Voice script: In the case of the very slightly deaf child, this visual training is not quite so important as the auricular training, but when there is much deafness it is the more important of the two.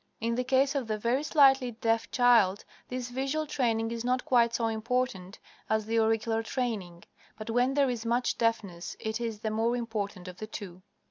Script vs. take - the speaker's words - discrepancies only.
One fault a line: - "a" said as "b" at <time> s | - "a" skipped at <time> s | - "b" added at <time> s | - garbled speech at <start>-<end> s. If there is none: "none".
none